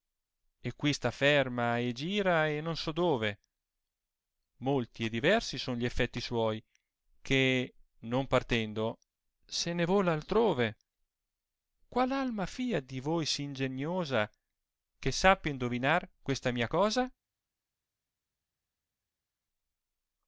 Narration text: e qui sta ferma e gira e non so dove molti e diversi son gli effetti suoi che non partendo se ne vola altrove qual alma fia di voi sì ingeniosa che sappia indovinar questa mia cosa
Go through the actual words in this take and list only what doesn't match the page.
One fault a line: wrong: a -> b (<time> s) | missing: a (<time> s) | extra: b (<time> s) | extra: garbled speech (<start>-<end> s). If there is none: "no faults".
no faults